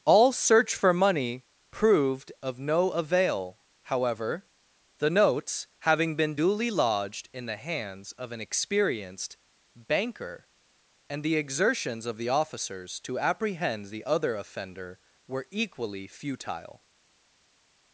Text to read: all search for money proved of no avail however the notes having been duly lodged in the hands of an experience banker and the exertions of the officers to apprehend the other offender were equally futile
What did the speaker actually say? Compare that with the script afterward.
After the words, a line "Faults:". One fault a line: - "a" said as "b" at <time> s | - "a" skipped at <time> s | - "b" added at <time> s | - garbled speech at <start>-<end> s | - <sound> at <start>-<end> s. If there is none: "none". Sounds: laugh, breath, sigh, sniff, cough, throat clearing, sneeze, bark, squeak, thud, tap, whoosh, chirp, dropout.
all search for money proved of no avail however the notes having been duly lodged in the hands of an experienced banker and the exertions of the officers to apprehend the other offender were equally futile
Faults:
- "experience" said as "experienced" at 8.4 s